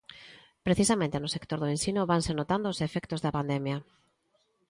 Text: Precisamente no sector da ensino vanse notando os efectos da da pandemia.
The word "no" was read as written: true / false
true